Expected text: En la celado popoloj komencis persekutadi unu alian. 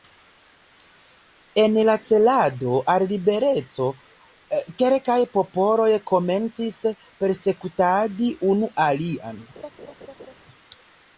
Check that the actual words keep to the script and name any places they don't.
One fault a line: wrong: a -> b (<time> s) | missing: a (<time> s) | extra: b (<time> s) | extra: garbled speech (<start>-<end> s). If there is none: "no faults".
extra: al libereco kelkaj (2.9 s)